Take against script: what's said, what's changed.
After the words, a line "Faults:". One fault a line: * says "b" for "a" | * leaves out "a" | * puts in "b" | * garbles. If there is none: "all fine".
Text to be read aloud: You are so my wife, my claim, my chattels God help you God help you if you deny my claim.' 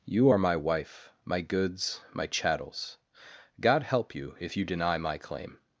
You are my wife, my goods, my chattels God help you if you deny my claim.'
Faults:
* leaves out "so"
* says "goods" for "claim"
* leaves out "God help you"